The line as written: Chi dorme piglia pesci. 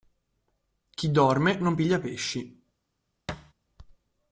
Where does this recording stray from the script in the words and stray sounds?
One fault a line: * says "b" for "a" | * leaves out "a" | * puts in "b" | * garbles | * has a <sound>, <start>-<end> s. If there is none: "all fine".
* puts in "non"
* has a thud, 3.3-3.5 s